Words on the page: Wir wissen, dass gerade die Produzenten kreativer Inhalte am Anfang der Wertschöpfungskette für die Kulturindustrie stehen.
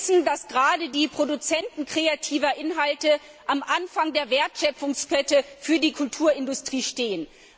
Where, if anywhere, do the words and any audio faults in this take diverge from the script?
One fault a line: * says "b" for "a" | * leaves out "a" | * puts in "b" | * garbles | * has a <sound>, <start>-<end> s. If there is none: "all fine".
all fine